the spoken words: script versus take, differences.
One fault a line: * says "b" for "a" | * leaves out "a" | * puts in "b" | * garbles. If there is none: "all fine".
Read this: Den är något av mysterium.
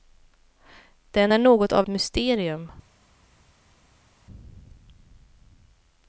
all fine